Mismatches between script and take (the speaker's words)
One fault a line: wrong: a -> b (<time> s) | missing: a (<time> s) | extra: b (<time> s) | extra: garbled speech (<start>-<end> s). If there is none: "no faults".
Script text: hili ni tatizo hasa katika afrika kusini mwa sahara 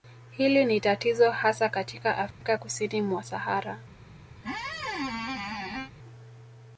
no faults